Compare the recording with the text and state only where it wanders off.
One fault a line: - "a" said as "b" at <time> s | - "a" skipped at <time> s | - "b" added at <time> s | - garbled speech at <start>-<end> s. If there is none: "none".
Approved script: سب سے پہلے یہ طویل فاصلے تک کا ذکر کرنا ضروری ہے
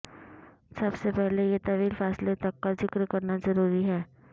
none